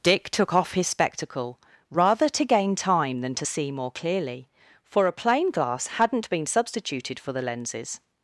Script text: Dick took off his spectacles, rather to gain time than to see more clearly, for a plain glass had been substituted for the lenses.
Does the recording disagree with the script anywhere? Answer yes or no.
yes